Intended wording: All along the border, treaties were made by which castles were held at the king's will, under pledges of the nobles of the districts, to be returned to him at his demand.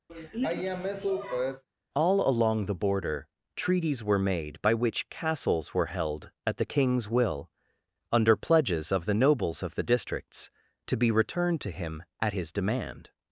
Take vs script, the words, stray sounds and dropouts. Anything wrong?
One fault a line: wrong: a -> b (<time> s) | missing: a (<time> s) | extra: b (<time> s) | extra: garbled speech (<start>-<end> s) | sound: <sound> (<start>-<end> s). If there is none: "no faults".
sound: sigh (0.1-1.6 s)